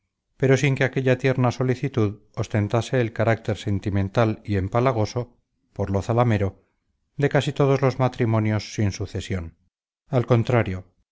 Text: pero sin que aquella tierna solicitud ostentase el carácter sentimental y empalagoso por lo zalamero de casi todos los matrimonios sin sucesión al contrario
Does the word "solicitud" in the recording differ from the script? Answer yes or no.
no